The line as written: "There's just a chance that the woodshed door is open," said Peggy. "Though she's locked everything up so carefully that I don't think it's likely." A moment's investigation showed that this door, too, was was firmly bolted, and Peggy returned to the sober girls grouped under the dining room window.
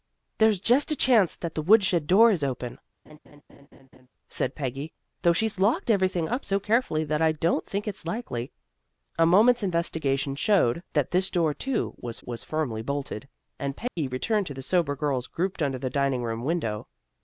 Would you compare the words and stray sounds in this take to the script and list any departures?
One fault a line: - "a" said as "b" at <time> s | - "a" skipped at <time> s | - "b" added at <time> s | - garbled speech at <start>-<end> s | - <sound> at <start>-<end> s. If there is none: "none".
- laugh at 3.1-4.1 s
- dropout at 13.9-14.0 s